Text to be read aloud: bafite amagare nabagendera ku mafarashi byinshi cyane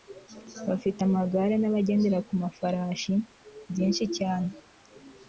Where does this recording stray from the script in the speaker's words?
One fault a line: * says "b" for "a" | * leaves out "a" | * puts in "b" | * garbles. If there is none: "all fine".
all fine